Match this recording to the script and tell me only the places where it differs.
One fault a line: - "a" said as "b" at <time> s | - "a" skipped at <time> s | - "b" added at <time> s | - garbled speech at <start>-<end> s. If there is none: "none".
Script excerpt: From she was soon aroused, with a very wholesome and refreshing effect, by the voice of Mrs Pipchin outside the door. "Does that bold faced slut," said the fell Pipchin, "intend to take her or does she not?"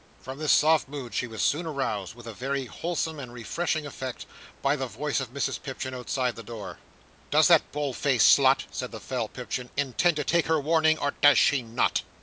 - "this soft mood" added at 0.4 s
- "warning" added at 10.6 s